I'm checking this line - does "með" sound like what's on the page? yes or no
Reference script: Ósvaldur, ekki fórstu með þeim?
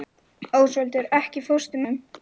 no